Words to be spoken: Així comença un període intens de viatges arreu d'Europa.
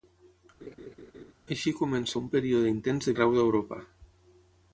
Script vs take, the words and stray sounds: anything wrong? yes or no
yes